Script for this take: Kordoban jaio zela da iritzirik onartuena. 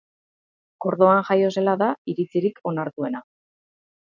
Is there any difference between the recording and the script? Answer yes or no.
no